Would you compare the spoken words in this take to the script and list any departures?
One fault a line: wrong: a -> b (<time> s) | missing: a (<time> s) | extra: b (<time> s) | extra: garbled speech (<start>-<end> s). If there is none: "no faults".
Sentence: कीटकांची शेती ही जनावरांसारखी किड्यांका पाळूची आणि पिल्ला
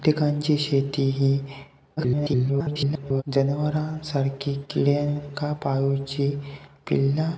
extra: garbled speech (2.0-3.2 s)
missing: आणि (6.3 s)